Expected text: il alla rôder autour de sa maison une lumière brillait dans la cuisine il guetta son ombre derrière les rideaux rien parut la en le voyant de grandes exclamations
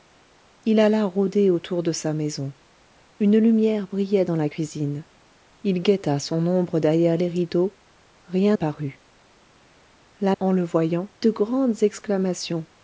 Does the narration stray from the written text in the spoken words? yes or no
no